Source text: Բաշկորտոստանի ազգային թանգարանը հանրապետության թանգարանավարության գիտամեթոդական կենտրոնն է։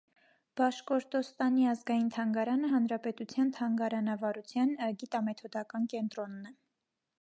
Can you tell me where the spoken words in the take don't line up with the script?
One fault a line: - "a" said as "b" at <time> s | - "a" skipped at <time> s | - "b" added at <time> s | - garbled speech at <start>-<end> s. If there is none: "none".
none